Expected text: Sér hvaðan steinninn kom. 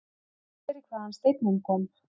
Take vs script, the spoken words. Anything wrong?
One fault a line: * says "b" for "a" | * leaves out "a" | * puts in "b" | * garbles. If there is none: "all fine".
all fine